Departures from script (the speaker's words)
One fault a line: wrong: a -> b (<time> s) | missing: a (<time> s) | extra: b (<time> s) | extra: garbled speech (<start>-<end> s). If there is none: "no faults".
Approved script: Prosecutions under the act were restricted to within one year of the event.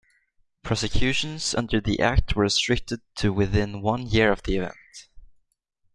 no faults